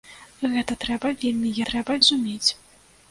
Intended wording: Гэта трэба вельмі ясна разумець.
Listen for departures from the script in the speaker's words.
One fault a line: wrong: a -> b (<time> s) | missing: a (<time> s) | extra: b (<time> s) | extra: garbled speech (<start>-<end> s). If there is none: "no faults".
wrong: ясна -> трэба (1.7 s)